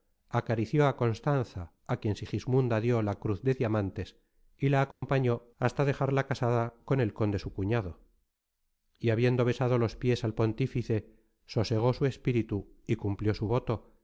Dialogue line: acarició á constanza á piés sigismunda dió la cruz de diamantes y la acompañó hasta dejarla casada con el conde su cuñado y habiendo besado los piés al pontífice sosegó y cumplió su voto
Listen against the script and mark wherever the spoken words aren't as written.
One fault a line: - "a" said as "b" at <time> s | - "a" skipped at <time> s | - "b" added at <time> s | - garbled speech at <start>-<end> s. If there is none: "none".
- "piés" said as "quien" at 2.0 s
- "su espíritu" added at 11.9 s